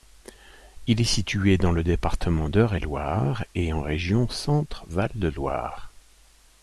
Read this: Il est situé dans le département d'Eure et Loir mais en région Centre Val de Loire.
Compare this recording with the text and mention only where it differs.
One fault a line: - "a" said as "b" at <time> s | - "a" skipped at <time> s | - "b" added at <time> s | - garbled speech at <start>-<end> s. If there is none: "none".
- "mais" said as "et" at 3.6 s